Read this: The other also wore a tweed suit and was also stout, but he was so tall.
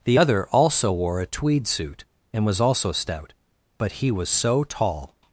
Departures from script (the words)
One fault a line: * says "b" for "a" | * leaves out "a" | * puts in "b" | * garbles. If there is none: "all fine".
all fine